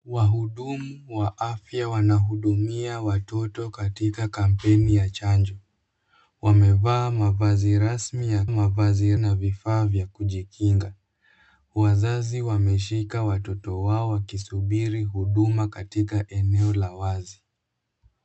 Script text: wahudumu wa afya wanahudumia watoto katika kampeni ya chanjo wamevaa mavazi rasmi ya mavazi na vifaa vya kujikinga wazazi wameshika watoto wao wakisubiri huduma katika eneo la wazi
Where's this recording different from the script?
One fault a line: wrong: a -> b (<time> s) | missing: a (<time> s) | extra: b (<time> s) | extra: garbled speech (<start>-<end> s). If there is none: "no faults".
no faults